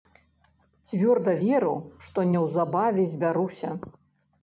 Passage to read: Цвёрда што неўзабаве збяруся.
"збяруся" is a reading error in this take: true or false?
false